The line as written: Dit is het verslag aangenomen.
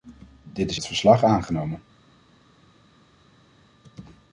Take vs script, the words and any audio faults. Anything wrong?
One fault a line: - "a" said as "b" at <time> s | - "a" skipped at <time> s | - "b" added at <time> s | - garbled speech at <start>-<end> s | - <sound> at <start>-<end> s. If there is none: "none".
none